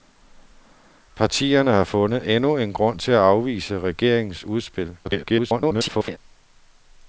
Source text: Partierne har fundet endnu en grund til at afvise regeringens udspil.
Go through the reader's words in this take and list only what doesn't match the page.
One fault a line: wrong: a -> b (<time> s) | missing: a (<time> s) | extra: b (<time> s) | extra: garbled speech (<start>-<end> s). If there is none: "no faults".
extra: garbled speech (5.0-6.2 s)